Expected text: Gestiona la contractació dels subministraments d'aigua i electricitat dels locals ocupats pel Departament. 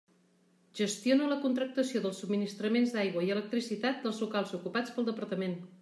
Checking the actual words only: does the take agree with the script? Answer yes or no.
yes